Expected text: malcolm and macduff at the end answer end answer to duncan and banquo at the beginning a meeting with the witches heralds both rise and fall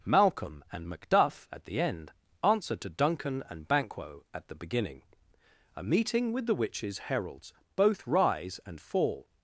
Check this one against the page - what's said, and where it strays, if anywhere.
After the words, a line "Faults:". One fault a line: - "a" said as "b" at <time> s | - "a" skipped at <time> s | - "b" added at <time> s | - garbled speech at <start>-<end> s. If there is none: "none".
malcolm and macduff at the end answer to duncan and banquo at the beginning a meeting with the witches heralds both rise and fall
Faults:
- "end answer" skipped at 2.8 s